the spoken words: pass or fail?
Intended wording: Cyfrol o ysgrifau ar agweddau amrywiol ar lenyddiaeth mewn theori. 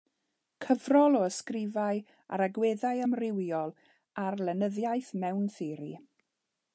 pass